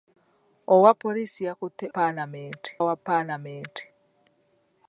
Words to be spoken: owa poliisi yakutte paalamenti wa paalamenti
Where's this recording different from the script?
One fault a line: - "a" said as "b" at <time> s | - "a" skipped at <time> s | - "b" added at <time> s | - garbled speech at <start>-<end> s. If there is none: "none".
none